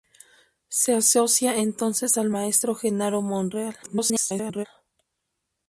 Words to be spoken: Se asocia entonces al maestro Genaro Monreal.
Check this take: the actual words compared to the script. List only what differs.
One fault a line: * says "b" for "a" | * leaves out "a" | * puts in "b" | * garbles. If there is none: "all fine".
* garbles